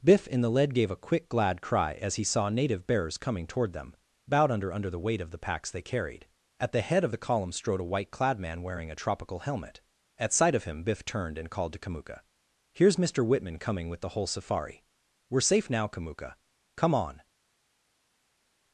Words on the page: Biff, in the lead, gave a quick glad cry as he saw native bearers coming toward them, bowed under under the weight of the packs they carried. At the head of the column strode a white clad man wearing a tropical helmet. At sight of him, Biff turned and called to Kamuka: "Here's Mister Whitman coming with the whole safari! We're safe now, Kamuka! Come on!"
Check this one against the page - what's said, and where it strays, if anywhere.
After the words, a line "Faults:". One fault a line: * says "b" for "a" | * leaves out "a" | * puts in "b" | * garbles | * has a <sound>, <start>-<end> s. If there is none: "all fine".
Biff, in the lead, gave a quick glad cry as he saw native bearers coming toward them, bowed under under the weight of the packs they carried. At the head of the column strode a white clad man wearing a tropical helmet. At sight of him, Biff turned and called to Kamuka: "Here's Mister Whitman coming with the whole safari! We're safe now, Kamuka! Come on!"
Faults:
all fine